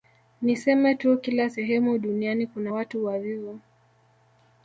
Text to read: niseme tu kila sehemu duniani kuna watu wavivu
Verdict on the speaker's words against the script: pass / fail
pass